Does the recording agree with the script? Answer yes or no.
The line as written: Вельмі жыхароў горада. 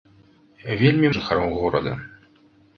yes